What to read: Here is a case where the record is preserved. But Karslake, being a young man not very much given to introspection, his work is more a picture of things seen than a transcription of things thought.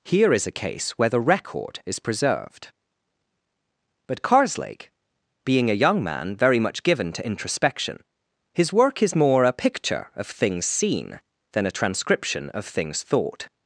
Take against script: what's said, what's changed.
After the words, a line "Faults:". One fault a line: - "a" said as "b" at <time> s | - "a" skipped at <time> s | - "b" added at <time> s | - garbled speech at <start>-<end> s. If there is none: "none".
Here is a case where the record is preserved. But Karslake, being a young man very much given to introspection, his work is more a picture of things seen than a transcription of things thought.
Faults:
- "not" skipped at 6.3 s